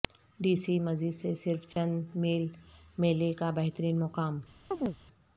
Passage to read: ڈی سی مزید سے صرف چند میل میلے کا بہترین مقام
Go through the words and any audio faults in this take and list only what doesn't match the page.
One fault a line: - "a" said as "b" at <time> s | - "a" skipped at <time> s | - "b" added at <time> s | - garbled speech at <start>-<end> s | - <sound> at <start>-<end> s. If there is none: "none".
- dropout at 1.7-1.8 s
- chirp at 4.7-5.0 s